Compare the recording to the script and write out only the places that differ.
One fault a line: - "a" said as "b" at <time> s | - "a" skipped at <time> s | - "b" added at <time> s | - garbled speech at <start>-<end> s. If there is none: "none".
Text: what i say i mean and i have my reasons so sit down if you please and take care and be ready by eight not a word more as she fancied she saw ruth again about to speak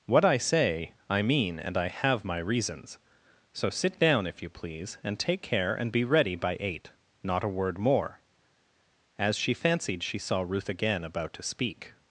none